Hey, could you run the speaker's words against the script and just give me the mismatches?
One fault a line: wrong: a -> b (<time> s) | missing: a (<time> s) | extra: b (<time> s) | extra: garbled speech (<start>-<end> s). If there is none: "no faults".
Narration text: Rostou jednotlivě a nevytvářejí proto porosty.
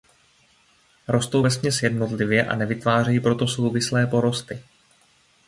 extra: vesměs (1.4 s)
extra: souvislé (3.5 s)